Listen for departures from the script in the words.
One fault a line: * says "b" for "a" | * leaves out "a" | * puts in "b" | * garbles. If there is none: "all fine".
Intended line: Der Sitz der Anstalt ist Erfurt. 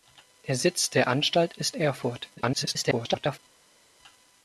* garbles